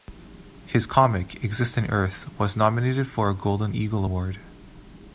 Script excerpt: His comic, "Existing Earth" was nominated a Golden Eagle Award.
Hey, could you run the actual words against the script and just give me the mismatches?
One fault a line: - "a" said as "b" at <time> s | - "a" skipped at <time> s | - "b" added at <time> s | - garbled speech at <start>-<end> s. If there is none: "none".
- "for" added at 3.1 s